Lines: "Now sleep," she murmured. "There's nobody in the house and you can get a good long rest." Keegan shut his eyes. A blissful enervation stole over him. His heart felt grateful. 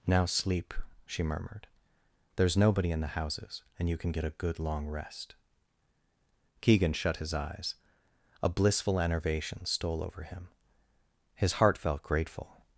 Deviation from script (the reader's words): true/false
true